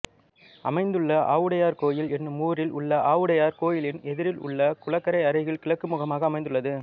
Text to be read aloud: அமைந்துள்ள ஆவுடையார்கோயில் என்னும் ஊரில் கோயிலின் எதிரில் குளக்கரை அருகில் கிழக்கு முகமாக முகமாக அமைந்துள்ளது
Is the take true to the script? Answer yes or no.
no